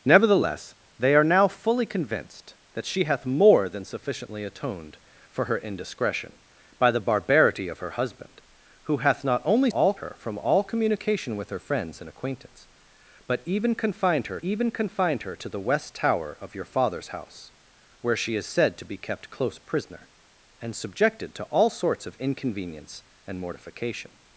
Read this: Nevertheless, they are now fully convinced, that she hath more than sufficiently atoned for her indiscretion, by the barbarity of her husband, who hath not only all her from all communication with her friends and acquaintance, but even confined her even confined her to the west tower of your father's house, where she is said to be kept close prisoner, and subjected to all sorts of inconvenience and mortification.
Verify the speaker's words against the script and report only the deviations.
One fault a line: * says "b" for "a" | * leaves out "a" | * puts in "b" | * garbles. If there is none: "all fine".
all fine